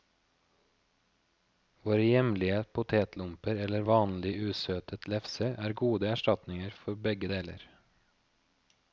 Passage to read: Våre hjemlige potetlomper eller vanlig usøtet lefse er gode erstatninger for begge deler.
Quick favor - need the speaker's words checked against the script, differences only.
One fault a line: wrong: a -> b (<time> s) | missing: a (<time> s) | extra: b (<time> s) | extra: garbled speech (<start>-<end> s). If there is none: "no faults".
no faults